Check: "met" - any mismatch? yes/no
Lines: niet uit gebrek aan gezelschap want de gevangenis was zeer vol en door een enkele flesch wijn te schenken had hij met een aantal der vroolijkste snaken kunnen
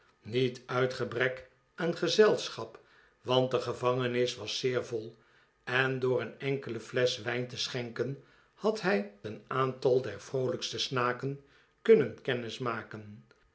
yes